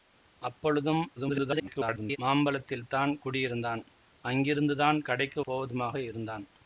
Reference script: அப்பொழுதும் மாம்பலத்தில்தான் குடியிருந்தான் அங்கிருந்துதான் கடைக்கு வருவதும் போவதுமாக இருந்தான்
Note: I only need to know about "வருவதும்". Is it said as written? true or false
false